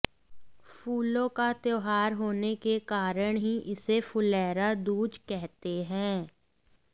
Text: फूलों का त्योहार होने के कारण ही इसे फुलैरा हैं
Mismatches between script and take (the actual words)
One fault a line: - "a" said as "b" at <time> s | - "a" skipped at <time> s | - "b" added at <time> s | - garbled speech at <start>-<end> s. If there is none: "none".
- "दूज कहते" added at 4.7 s